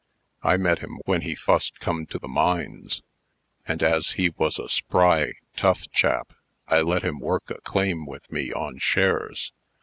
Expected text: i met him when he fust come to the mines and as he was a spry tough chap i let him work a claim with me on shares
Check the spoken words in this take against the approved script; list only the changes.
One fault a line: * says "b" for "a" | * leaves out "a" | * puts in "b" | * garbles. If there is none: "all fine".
all fine